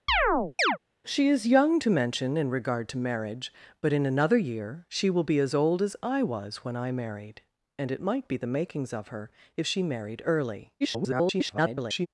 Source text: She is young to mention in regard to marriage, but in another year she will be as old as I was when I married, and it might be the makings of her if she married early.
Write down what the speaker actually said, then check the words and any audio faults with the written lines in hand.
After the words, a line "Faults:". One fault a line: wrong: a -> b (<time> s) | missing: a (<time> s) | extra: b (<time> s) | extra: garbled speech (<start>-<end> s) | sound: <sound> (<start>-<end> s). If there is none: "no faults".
She is young to mention in regard to marriage, but in another year she will be as old as I was when I married, and it might be the makings of her if she married early. [garbled]
Faults:
sound: chirp (0.1-0.8 s)
extra: garbled speech (10.8-12.1 s)